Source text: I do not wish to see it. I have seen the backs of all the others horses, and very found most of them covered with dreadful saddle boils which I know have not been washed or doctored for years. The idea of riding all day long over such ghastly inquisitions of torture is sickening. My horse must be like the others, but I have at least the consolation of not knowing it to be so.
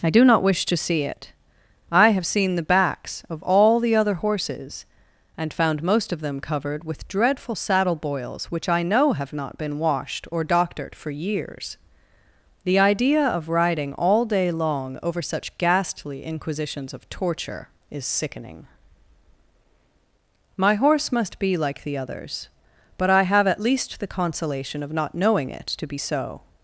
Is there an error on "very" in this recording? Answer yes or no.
yes